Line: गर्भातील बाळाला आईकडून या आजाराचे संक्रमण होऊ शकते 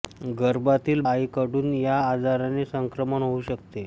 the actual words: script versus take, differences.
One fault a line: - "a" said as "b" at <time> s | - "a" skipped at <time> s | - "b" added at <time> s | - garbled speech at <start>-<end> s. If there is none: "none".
- "बाळाला" skipped at 1.0 s